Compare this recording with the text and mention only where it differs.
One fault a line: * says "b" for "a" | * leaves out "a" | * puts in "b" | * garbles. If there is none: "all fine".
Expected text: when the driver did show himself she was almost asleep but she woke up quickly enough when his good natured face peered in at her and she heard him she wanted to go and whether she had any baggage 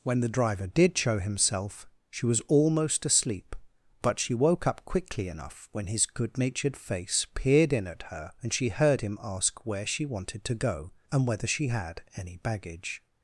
* puts in "ask where"